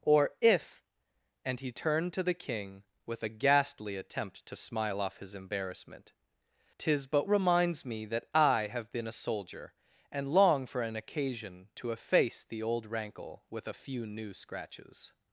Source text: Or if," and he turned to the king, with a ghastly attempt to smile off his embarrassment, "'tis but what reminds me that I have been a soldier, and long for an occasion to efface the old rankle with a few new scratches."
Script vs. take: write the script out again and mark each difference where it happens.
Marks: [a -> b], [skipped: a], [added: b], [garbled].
Or if," and he turned to the king, with a ghastly attempt to smile off his embarrassment, "'tis but [skipped: what] reminds me that I have been a soldier, and long for an occasion to efface the old rankle with a few new scratches."